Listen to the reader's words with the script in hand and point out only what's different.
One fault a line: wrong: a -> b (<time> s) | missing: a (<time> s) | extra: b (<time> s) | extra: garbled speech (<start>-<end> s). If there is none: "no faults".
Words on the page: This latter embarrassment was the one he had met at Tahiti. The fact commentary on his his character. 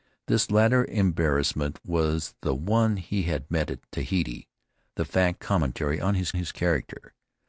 no faults